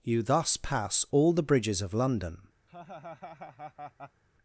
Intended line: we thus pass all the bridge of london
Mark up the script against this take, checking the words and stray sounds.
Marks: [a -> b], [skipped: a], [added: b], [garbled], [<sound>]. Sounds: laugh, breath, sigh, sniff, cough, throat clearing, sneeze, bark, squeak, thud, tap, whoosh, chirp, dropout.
[we -> you] thus pass all the [bridge -> bridges] of london [laugh]